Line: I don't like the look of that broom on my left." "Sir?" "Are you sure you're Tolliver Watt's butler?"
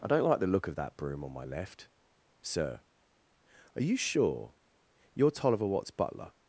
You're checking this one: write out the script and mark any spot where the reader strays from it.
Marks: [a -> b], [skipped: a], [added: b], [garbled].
I don't like the look of that broom on my left." "Sir?" "Are you sure you're Tolliver Watt's butler?"